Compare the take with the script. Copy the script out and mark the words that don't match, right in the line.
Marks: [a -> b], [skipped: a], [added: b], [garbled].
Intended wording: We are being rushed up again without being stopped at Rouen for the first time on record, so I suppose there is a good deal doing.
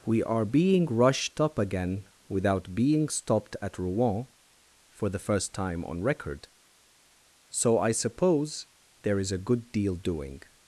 We are being rushed up again without being stopped at Rouen for the first time on record, so I suppose there is a good deal doing.